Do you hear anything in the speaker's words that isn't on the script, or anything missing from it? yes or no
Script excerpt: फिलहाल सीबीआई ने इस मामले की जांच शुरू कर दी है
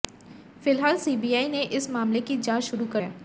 yes